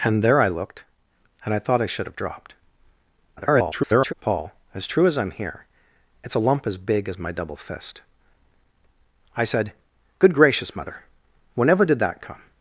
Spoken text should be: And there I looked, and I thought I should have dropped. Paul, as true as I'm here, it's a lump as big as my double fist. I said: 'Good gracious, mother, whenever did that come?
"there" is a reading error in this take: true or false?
false